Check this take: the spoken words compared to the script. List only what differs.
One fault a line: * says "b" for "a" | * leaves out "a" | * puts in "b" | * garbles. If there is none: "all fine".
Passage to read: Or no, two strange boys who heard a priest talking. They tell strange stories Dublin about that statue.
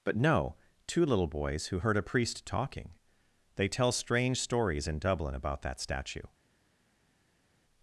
* says "But" for "Or"
* says "little" for "strange"
* puts in "in"